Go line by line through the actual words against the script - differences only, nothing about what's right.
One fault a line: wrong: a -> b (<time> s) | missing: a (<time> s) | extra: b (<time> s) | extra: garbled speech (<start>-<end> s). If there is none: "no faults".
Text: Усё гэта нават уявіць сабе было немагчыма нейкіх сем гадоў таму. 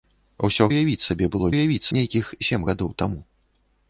missing: гэта нават (0.7 s)
wrong: немагчыма -> уявіць (1.5 s)